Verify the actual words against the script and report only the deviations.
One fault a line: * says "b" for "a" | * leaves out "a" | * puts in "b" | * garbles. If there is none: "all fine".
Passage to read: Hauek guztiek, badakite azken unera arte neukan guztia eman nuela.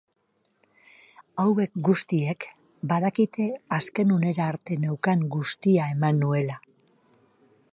all fine